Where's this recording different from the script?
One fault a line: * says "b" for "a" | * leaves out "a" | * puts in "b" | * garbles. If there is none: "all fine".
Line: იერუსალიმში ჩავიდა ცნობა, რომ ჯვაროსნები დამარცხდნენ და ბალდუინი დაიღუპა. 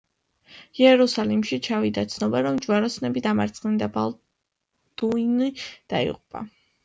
all fine